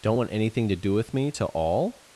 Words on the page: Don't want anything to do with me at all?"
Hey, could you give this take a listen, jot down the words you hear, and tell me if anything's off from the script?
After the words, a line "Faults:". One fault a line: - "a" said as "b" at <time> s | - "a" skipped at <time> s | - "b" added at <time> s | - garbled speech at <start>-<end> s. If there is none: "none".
Don't want anything to do with me to all?"
Faults:
- "at" said as "to" at 1.3 s